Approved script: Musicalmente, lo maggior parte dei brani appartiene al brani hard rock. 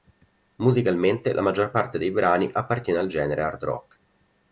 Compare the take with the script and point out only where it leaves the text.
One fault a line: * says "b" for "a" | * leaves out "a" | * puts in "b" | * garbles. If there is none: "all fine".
* says "la" for "lo"
* says "genere" for "brani"